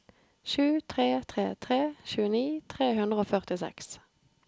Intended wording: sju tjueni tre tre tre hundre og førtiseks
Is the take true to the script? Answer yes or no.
no